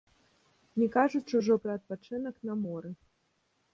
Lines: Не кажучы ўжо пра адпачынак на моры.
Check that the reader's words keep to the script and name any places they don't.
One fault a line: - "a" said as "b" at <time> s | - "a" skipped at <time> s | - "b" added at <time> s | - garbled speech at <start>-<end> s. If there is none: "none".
none